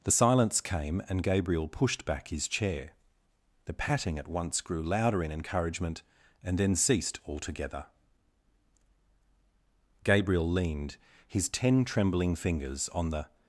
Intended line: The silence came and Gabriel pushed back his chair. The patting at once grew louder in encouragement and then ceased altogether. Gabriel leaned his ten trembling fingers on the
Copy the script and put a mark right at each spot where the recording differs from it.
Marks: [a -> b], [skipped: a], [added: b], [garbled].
The silence came and Gabriel pushed back his chair. The patting at once grew louder in encouragement and then ceased altogether. Gabriel leaned his ten trembling fingers on the